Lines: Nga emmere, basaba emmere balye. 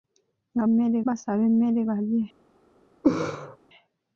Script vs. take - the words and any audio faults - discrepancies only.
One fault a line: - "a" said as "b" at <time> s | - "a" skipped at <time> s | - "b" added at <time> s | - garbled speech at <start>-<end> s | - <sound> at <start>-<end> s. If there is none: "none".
- laugh at 3.0-3.6 s